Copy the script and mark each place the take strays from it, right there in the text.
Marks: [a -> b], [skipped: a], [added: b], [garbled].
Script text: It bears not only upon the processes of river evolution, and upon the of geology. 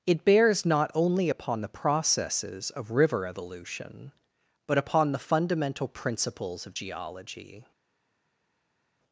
It bears not only upon the processes of river evolution, [and -> but] upon the [added: fundamental principles] of geology.